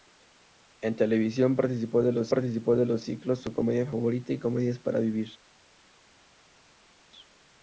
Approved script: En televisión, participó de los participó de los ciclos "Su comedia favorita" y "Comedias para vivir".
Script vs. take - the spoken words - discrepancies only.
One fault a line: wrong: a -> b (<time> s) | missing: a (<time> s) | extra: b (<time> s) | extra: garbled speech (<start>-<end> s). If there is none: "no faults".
no faults